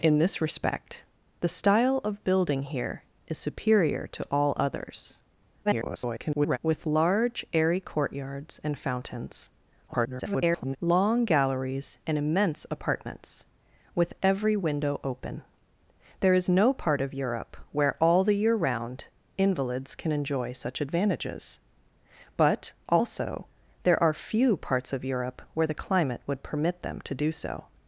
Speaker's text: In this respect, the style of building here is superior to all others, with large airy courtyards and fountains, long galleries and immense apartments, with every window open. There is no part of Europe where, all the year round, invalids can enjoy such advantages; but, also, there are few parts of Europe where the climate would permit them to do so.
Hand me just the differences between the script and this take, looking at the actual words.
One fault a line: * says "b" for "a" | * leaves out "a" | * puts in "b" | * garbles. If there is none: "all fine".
* garbles
* garbles